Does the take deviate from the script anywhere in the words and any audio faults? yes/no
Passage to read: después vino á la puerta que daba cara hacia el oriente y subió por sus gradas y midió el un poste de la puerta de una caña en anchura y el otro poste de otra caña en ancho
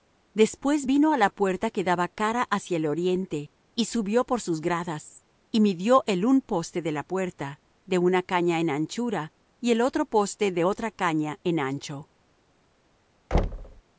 yes